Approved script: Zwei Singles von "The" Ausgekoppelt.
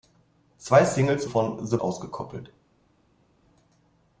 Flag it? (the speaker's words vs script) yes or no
no